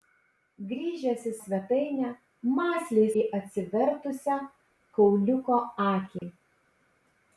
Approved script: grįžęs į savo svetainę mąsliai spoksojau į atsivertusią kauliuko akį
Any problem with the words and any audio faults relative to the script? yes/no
yes